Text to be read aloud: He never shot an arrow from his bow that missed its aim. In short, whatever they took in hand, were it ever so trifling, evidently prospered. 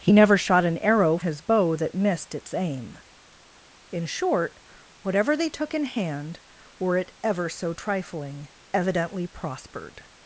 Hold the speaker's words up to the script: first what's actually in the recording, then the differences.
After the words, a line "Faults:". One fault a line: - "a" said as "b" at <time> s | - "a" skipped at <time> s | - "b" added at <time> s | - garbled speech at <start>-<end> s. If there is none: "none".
He never shot an arrow his bow that missed its aim. In short, whatever they took in hand, were it ever so trifling, evidently prospered.
Faults:
- "from" skipped at 1.2 s